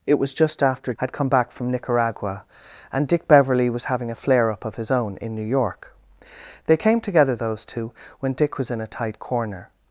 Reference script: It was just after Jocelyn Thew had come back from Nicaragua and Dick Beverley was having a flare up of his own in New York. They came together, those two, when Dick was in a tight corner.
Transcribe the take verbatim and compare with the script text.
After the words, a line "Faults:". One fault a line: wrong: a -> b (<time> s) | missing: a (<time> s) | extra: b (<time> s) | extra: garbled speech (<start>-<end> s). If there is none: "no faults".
It was just after Had come back from Nicaragua and Dick Beverley was having a flare up of his own in New York. They came together, those two, when Dick was in a tight corner.
Faults:
missing: Jocelyn Thew (0.9 s)